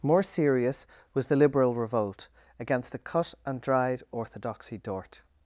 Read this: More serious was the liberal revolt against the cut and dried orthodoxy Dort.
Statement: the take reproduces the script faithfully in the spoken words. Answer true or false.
true